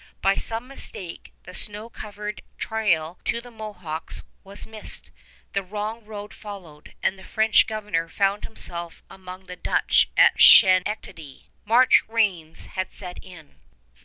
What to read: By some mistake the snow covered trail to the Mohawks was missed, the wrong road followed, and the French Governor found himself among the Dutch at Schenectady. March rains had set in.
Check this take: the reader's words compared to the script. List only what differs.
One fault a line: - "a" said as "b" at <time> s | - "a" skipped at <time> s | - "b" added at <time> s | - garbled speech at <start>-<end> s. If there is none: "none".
none